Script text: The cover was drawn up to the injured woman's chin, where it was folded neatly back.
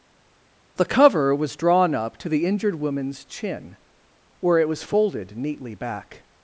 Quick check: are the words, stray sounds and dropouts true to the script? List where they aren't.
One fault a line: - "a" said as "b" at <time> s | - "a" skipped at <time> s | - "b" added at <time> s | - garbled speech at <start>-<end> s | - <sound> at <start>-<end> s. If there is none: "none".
none